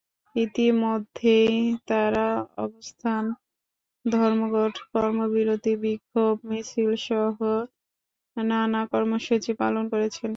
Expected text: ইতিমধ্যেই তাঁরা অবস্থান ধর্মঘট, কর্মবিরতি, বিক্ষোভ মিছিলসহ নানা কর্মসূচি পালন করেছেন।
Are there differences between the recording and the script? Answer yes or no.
no